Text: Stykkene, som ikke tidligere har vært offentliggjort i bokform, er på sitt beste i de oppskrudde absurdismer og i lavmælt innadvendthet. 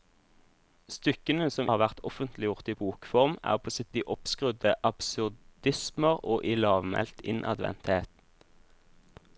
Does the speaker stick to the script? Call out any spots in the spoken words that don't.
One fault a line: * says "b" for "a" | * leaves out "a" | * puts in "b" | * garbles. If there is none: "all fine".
* leaves out "ikke tidligere"
* leaves out "beste i"